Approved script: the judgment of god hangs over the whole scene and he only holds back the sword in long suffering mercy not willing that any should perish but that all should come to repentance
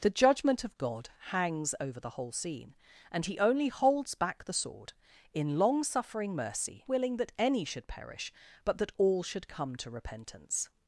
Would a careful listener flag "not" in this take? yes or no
yes